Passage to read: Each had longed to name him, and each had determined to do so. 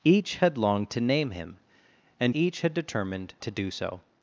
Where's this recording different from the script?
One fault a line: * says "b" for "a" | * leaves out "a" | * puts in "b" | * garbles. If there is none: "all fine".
all fine